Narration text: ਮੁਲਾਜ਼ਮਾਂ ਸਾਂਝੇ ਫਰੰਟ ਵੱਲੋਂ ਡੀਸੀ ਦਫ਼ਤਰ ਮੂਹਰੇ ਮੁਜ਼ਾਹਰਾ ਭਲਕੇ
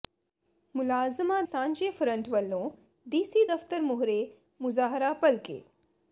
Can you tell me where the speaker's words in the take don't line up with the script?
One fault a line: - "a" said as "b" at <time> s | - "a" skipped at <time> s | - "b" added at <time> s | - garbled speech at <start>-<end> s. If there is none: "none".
none